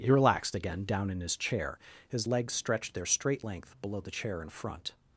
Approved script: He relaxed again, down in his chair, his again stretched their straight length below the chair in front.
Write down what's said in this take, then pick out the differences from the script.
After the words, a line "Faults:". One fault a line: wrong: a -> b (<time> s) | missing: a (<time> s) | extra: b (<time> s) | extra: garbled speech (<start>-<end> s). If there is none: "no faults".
He relaxed again, down in his chair, his legs stretched their straight length below the chair in front.
Faults:
wrong: again -> legs (2.2 s)